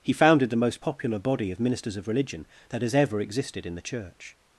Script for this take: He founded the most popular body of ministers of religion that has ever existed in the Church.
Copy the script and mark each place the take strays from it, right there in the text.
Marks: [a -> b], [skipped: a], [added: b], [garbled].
He founded the most popular body of ministers of religion that has ever existed in the Church.